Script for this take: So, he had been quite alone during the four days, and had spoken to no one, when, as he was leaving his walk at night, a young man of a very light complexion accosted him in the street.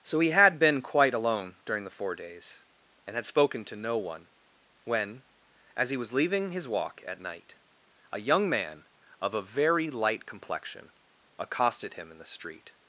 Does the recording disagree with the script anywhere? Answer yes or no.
no